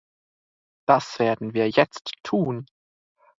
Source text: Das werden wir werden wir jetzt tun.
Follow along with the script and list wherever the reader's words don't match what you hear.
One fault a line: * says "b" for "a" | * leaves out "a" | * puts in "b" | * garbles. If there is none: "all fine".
* leaves out "werden wir"